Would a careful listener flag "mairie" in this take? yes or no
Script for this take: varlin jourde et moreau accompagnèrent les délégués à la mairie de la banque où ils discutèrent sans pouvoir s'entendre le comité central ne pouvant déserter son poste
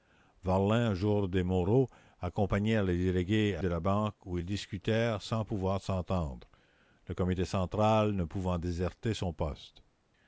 yes